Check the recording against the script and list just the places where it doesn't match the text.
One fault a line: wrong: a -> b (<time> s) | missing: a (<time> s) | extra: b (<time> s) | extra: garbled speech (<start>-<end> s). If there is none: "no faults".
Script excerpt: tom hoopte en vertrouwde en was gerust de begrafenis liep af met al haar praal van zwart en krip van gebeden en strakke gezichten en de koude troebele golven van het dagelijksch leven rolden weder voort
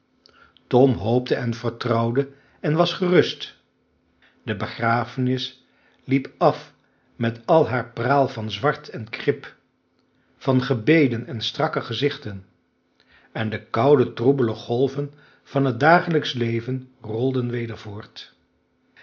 no faults